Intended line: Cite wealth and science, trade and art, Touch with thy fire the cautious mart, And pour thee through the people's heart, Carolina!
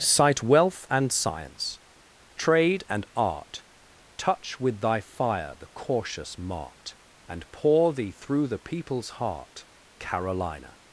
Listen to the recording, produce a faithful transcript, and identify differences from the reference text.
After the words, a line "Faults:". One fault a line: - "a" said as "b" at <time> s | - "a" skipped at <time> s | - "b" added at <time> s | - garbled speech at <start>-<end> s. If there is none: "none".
Cite wealth and science, trade and art, Touch with thy fire the cautious mart, And pour thee through the people's heart, Carolina!
Faults:
none